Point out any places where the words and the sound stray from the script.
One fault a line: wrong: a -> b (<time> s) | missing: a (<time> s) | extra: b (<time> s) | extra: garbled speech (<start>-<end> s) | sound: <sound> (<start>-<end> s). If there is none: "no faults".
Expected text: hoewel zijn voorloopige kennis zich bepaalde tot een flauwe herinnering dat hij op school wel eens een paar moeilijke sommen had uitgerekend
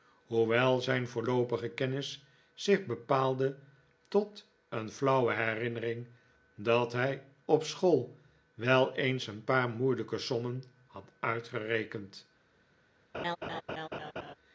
sound: laugh (13.1-14.3 s)